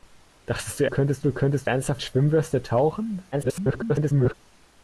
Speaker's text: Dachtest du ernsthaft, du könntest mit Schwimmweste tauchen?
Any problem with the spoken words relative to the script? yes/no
yes